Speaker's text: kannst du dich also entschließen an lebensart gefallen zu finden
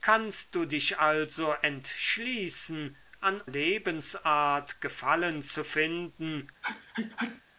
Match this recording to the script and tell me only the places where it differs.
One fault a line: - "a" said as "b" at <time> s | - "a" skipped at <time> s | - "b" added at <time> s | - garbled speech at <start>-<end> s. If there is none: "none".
none